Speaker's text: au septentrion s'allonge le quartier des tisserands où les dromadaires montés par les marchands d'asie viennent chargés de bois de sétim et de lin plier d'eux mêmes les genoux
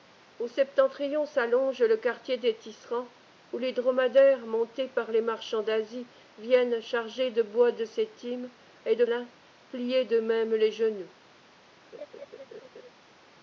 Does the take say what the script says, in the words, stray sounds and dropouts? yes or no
no